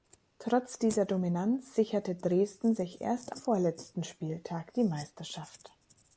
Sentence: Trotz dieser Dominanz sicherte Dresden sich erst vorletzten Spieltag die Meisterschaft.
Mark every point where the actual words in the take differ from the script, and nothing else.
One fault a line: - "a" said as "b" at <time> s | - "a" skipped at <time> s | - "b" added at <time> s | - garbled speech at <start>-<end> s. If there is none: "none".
none